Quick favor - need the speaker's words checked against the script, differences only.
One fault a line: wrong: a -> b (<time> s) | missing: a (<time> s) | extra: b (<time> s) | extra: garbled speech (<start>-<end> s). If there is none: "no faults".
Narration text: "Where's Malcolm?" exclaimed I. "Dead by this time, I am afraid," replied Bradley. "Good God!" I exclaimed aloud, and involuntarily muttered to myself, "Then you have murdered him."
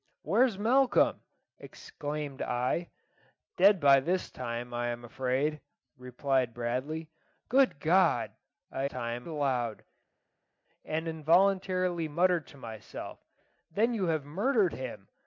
wrong: exclaimed -> time (8.9 s)